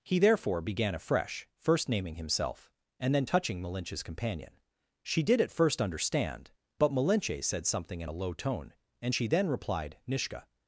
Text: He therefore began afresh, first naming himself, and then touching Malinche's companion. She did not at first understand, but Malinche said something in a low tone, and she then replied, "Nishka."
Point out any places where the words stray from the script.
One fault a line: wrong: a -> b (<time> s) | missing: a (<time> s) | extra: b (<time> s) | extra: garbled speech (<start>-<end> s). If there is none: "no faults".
missing: not (5.4 s)